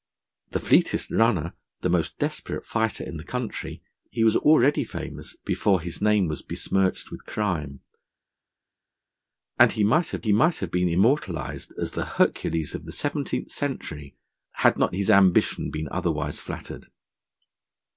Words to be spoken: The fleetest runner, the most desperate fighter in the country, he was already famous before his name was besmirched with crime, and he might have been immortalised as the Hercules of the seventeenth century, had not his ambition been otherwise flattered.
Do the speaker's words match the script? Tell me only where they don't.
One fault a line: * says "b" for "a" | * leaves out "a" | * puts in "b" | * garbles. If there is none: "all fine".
* puts in "he might have"